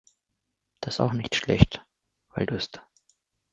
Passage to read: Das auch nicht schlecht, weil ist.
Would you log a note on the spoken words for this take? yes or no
no